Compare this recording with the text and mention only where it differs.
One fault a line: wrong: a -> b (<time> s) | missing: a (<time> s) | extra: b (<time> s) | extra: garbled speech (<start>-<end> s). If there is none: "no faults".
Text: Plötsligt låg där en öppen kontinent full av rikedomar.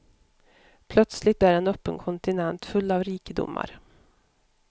missing: låg (1.4 s)